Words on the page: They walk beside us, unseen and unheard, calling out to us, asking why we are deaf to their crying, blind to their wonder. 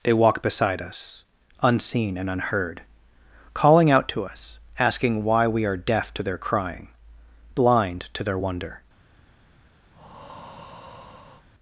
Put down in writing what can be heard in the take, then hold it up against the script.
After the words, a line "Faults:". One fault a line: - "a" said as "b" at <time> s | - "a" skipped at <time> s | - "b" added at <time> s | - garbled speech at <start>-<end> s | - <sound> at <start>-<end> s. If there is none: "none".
They walk beside us, unseen and unheard, calling out to us, asking why we are deaf to their crying, blind to their wonder.
Faults:
- breath at 9.9-11.5 s